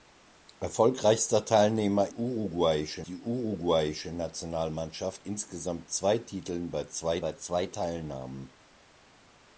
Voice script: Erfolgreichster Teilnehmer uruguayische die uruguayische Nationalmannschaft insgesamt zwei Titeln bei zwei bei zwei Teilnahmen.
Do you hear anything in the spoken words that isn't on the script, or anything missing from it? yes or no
no